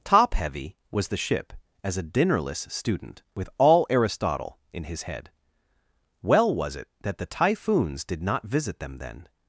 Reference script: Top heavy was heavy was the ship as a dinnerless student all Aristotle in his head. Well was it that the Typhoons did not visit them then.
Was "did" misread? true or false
false